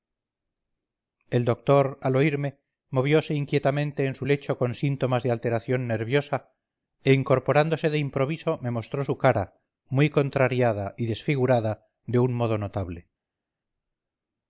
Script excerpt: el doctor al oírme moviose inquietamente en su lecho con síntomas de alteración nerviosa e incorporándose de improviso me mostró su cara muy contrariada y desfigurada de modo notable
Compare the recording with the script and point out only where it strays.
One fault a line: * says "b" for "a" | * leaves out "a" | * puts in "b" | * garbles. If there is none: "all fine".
* puts in "un"